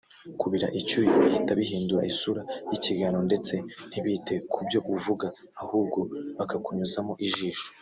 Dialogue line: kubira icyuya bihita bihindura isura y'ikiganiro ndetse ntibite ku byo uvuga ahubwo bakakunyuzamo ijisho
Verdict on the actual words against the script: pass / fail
pass